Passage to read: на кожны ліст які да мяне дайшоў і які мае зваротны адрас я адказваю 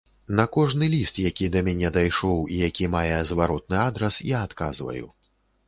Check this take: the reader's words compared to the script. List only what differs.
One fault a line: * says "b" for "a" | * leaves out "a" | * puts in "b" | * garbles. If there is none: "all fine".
all fine